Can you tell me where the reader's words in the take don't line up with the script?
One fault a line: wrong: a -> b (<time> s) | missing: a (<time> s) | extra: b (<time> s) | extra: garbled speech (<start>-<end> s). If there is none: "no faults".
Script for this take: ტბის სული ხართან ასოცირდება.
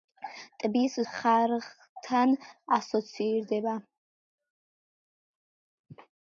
missing: სული (0.9 s)